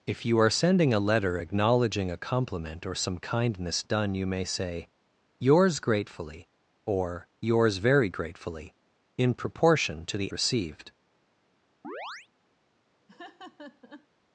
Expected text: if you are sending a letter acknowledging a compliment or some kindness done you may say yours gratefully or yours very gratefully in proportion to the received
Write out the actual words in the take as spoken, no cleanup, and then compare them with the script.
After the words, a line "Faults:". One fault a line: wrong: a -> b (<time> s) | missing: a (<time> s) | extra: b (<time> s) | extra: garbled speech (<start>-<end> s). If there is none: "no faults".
if you are sending a letter acknowledging a compliment or some kindness done you may say yours gratefully or yours very gratefully in proportion to the received
Faults:
no faults